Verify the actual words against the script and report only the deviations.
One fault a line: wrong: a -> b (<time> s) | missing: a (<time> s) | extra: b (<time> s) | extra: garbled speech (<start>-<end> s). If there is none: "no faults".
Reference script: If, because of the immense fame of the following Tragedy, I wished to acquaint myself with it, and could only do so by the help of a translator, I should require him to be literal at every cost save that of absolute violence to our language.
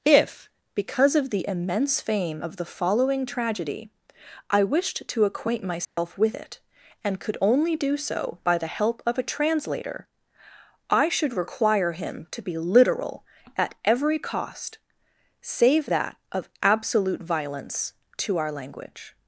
no faults